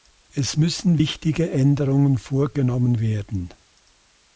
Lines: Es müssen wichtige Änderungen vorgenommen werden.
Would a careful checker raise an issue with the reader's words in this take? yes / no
no